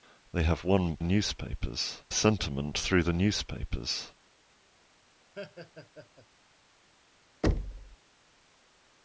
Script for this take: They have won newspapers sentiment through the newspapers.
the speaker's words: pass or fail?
pass